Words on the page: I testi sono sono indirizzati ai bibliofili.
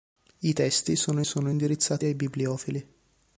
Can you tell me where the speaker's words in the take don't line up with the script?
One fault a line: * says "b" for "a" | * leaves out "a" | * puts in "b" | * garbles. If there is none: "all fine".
all fine